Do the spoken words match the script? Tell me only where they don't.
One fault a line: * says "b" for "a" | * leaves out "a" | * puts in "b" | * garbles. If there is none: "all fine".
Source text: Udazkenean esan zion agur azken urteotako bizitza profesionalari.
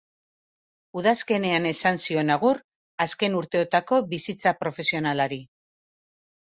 all fine